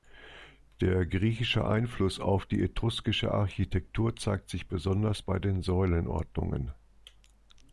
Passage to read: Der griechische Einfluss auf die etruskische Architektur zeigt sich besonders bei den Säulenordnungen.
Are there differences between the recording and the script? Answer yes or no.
no